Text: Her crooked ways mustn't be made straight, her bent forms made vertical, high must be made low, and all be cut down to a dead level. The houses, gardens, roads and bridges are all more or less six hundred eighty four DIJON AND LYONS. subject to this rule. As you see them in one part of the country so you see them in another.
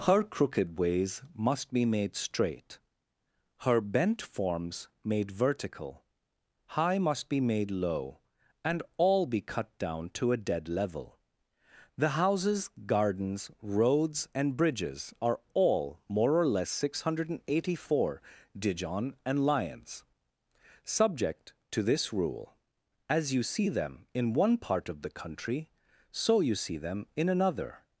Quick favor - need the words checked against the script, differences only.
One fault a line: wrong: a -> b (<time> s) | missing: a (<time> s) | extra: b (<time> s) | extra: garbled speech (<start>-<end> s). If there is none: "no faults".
wrong: mustn't -> must (1.4 s)